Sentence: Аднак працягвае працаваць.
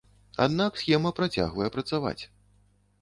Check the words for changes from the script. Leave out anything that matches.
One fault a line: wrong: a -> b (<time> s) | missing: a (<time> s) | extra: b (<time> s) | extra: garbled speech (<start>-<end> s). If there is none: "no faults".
extra: схема (0.8 s)